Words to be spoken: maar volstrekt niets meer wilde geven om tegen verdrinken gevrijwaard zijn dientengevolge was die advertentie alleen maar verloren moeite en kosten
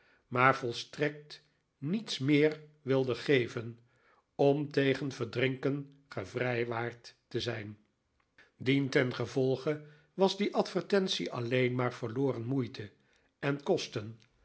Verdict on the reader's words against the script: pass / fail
fail